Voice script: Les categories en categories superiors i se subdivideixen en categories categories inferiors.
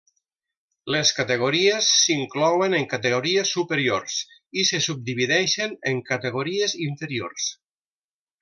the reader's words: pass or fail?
fail